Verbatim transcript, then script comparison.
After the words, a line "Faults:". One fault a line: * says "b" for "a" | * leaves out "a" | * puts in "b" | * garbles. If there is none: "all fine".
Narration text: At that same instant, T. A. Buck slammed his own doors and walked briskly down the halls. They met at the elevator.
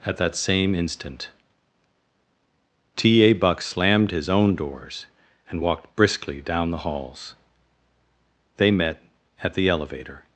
At that same instant, T. A. Buck slammed his own doors and walked briskly down the halls. They met at the elevator.
Faults:
all fine